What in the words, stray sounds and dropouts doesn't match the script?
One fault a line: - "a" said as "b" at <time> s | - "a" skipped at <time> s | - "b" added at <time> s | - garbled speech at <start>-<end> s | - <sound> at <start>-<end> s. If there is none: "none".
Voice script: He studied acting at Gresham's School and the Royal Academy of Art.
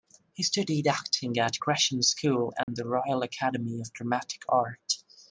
- dropout at 2.6-2.7 s
- "Dramatic" added at 3.9 s